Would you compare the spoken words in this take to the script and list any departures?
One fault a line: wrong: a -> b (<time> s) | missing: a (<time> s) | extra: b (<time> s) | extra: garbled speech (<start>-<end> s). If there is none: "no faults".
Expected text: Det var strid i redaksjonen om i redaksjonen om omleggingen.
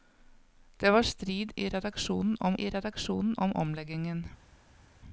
no faults